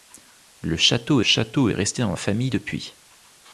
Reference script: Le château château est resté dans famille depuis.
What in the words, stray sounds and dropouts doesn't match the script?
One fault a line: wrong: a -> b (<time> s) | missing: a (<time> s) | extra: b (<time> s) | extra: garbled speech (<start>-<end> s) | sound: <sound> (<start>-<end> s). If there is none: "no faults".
no faults